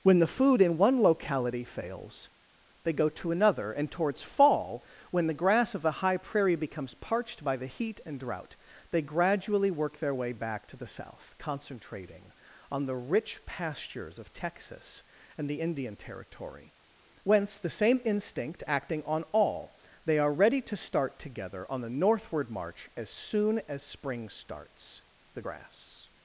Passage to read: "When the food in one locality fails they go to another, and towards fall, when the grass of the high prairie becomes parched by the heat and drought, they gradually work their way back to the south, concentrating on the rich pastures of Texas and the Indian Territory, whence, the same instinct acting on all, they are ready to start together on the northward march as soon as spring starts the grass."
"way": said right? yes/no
yes